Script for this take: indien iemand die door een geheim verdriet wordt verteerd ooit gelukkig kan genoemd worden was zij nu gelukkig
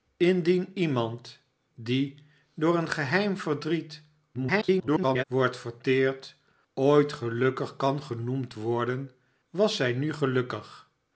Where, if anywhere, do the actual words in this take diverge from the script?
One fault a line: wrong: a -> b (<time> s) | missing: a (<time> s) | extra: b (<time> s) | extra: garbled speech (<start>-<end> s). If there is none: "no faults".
extra: garbled speech (4.3-5.2 s)